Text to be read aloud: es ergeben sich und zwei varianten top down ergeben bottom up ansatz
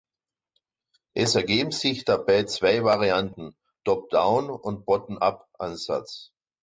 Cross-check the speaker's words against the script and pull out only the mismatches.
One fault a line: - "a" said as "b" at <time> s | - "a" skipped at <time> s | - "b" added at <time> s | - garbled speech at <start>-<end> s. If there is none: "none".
- "und" said as "dabei" at 2.0 s
- "ergeben" said as "und" at 4.5 s